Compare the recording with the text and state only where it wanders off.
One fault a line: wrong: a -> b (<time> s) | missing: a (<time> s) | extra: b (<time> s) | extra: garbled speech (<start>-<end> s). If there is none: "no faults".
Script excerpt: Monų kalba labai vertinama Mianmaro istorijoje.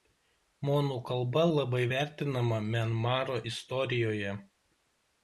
no faults